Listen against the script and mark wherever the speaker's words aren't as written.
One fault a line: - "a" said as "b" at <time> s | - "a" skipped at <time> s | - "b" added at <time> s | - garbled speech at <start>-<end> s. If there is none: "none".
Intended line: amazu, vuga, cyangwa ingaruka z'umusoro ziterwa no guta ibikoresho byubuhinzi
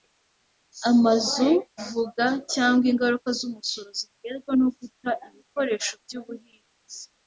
none